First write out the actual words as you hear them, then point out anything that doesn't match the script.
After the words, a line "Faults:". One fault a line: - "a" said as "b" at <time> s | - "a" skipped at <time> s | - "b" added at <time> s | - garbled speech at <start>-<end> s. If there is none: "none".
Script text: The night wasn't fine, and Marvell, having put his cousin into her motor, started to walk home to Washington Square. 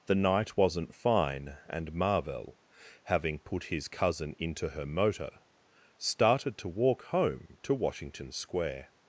The night wasn't fine, and Marvell, having put his cousin into her motor, started to walk home to Washington Square.
Faults:
none